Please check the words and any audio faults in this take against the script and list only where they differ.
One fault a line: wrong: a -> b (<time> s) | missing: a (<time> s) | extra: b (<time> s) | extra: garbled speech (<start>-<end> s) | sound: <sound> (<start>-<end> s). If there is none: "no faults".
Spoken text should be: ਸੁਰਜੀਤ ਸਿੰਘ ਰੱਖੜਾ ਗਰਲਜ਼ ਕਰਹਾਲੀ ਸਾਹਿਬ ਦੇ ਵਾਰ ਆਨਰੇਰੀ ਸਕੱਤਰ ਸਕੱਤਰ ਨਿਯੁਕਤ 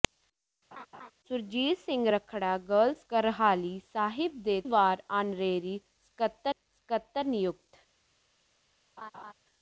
sound: laugh (0.7-1.1 s)
sound: laugh (9.0-9.3 s)